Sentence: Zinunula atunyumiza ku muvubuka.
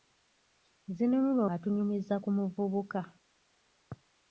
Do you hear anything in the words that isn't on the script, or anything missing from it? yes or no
no